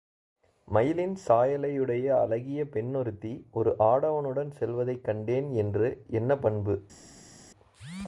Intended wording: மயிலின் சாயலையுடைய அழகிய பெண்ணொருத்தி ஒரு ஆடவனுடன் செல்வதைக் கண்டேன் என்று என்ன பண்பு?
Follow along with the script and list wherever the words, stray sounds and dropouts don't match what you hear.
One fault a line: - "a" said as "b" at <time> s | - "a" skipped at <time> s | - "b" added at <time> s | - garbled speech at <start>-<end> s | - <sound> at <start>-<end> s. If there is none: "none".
none